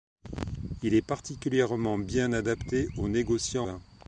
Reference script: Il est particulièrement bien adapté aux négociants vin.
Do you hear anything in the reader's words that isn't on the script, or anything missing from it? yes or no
no